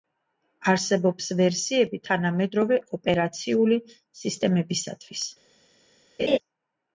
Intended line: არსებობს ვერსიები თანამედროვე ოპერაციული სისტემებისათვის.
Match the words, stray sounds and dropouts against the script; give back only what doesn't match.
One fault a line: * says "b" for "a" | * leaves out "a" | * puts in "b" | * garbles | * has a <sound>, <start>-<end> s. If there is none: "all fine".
* has a laugh, 6.2-6.4 s